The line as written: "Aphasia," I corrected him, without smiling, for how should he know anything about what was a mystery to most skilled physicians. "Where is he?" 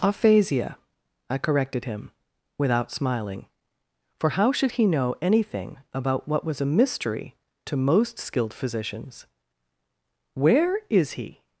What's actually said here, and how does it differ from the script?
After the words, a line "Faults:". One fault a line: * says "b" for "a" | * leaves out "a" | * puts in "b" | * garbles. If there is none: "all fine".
"Aphasia," I corrected him, without smiling, for how should he know anything about what was a mystery to most skilled physicians. "Where is he?"
Faults:
all fine